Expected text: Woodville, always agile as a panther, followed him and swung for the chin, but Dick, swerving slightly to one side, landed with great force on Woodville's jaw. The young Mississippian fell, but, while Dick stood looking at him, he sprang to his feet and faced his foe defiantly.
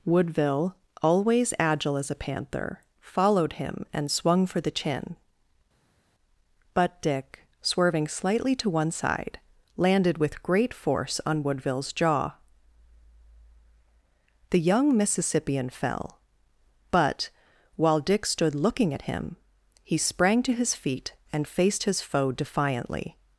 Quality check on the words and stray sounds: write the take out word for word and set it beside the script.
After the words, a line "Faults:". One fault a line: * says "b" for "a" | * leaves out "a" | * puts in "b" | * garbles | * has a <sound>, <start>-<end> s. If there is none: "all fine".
Woodville, always agile as a panther, followed him and swung for the chin, but Dick, swerving slightly to one side, landed with great force on Woodville's jaw. The young Mississippian fell, but, while Dick stood looking at him, he sprang to his feet and faced his foe defiantly.
Faults:
all fine